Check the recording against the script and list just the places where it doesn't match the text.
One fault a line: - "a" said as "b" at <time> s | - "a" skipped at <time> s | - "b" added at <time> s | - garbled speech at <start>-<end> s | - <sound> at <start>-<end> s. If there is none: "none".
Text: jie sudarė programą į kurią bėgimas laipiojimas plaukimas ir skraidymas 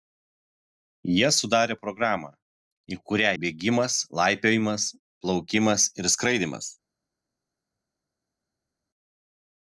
none